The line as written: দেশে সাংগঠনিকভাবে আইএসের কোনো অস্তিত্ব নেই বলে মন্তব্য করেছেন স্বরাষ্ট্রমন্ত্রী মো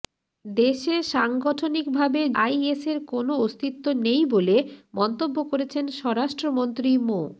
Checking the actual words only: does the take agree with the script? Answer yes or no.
yes